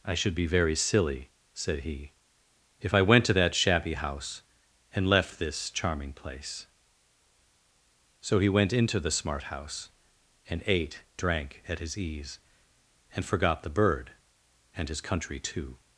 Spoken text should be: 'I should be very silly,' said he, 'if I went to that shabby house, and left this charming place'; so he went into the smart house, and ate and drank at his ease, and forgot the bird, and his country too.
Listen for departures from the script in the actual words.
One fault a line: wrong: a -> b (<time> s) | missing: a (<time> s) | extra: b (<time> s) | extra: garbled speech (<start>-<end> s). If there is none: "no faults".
missing: and (11.0 s)